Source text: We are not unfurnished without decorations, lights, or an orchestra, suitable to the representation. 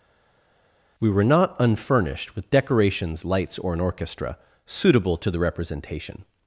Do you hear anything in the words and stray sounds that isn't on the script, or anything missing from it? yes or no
yes